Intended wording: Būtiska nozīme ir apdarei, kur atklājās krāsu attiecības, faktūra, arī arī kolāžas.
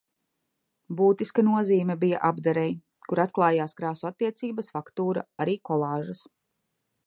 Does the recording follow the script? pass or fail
fail